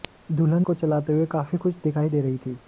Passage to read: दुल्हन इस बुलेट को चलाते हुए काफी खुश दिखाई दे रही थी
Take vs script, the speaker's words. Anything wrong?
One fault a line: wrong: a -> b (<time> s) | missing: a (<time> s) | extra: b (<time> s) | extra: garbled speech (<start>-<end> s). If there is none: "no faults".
missing: इस बुलेट (0.7 s)